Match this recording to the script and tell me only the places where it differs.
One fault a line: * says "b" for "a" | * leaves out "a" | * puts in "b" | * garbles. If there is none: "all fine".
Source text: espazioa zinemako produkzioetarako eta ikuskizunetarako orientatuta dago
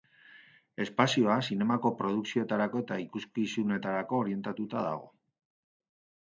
all fine